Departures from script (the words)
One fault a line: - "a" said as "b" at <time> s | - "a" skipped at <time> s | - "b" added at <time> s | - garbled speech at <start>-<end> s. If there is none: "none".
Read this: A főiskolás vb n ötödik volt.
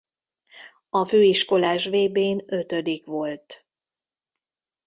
none